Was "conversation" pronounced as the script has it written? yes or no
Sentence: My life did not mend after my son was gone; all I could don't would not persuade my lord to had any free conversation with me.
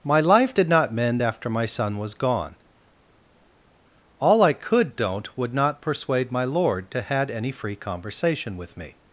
yes